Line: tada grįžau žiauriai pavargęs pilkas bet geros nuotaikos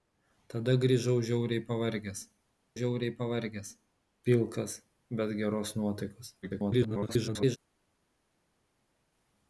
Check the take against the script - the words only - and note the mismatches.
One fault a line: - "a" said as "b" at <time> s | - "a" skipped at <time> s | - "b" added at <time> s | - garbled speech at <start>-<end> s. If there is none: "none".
- "žiauriai pavargęs" added at 2.8 s
- garbled speech at 6.4-7.6 s